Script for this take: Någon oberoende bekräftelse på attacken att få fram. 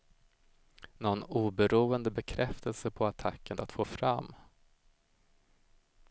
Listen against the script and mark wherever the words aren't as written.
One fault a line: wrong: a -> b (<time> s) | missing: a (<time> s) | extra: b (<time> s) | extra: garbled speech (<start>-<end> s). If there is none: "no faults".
no faults